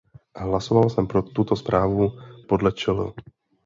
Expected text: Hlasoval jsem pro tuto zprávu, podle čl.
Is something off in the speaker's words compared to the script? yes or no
no